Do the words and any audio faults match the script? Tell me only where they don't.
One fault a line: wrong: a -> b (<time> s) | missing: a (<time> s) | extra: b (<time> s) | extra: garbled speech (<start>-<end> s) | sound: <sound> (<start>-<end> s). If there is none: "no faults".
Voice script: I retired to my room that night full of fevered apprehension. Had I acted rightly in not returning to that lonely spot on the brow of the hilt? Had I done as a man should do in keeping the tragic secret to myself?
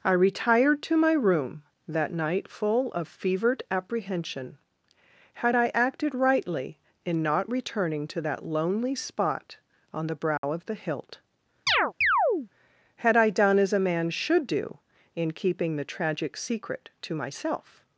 sound: dropout (10.4-10.4 s)
sound: chirp (11.7-12.5 s)